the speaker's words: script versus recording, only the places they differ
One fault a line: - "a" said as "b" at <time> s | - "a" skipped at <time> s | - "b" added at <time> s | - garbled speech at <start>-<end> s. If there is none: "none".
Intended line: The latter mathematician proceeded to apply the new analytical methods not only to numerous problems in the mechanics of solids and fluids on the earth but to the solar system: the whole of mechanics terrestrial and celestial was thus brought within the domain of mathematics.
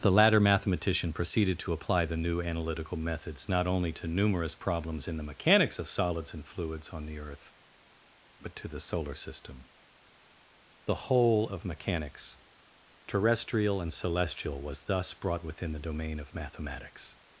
none